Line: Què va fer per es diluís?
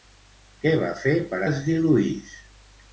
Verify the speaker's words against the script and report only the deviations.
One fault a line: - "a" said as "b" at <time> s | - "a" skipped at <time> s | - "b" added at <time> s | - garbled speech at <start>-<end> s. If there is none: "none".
none